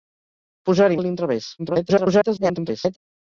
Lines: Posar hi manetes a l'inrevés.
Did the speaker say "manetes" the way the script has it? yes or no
no